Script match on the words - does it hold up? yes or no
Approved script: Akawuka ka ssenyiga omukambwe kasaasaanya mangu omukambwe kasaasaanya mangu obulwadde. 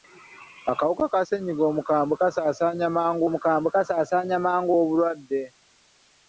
yes